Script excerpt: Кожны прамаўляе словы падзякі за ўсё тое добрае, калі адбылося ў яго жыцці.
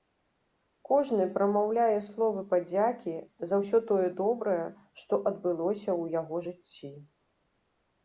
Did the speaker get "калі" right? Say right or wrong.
wrong